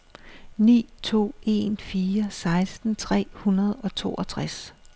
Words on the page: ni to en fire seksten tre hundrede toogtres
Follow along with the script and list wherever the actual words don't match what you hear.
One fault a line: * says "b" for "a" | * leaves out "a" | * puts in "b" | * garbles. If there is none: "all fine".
* puts in "og"